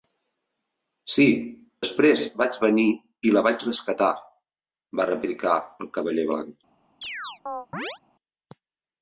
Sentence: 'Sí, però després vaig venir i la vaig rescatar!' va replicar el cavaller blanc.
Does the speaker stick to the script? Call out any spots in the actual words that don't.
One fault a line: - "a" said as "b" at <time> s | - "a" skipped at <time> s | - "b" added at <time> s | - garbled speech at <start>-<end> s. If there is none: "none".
- "però" skipped at 1.2 s